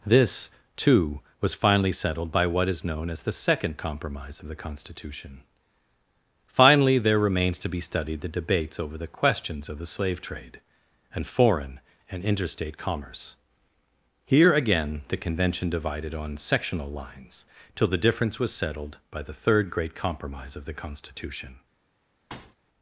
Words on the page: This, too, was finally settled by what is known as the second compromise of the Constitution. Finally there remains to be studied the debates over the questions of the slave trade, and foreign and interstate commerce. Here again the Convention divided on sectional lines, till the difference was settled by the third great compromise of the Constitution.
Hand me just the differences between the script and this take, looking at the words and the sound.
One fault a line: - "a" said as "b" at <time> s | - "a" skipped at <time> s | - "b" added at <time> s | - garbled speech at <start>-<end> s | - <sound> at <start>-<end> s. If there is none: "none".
- thud at 22.3-22.6 s